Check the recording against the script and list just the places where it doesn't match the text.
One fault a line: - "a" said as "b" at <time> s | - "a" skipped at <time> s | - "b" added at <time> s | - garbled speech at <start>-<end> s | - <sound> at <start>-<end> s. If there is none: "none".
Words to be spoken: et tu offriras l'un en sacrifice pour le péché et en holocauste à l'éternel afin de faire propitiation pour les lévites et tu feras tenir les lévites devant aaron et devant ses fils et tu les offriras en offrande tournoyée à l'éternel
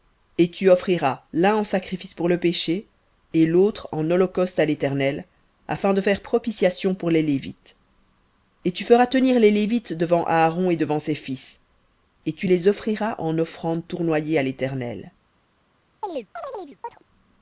- "l'autre" added at 3.5 s
- chirp at 16.0-17.0 s